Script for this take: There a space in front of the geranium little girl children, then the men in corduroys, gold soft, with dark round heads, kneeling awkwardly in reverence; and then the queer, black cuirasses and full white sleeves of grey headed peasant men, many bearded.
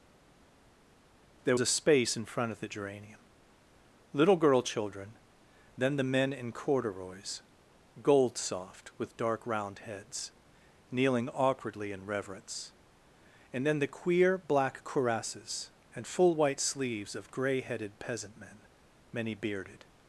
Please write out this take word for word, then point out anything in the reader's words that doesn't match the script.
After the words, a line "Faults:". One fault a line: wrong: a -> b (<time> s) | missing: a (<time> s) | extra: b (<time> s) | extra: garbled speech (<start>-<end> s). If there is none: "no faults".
There a space in front of the geranium little girl children, then the men in corduroys, gold soft, with dark round heads, kneeling awkwardly in reverence; and then the queer, black cuirasses and full white sleeves of grey headed peasant men, many bearded.
Faults:
no faults